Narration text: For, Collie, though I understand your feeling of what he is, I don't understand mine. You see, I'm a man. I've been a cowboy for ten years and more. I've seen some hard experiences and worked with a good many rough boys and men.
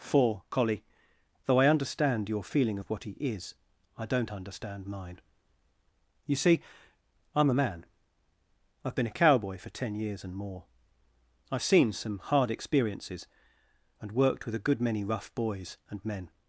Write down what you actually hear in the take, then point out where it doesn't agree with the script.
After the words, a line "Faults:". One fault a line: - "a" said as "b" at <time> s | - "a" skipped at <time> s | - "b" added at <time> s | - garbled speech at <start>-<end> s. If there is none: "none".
For, Collie, though I understand your feeling of what he is, I don't understand mine. You see, I'm a man. I've been a cowboy for ten years and more. I've seen some hard experiences and worked with a good many rough boys and men.
Faults:
none